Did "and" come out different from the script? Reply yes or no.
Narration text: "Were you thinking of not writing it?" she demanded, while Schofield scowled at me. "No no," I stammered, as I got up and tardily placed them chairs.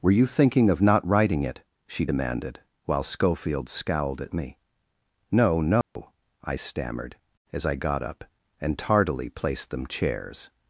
no